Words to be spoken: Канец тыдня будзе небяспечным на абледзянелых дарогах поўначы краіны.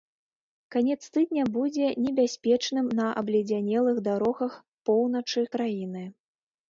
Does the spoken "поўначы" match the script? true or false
true